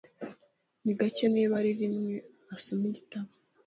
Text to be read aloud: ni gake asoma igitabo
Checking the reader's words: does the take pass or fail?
fail